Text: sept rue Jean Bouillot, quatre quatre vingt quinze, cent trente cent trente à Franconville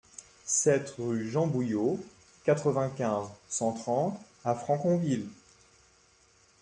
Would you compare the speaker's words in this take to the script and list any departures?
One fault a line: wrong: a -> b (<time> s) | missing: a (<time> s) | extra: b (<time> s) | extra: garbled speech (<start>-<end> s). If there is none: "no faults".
missing: quatre (2.7 s)
missing: cent trente (4.2 s)